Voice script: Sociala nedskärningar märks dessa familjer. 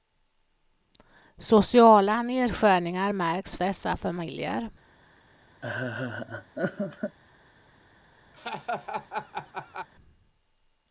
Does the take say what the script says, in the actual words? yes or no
yes